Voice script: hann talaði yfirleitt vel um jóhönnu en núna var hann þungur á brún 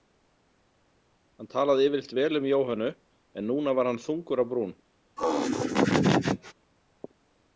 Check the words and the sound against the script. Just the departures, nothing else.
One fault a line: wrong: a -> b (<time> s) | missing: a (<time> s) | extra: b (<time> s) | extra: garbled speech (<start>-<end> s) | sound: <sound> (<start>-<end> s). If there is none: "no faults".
sound: laugh (5.2-6.5 s)